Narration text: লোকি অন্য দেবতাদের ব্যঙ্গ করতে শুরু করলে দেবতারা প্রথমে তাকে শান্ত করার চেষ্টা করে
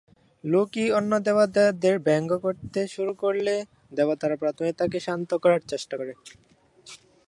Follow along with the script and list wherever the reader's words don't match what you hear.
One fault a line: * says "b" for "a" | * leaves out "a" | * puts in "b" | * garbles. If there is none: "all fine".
all fine